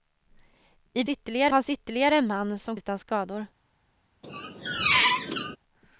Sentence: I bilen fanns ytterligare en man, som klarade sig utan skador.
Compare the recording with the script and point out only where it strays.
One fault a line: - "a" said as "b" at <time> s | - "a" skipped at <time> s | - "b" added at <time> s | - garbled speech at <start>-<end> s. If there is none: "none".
- "bilen" said as "ytterligare" at 1.1 s
- "klarade sig" skipped at 2.8 s